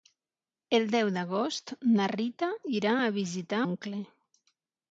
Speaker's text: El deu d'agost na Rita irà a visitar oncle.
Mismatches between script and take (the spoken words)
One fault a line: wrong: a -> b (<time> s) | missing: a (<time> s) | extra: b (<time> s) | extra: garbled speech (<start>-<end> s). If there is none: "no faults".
no faults